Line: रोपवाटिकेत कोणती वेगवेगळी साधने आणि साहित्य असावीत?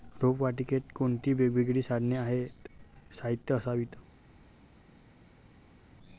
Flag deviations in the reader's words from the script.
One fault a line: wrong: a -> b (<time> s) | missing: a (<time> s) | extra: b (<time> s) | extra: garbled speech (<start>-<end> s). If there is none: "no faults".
no faults